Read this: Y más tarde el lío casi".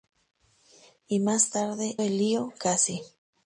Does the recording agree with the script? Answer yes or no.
yes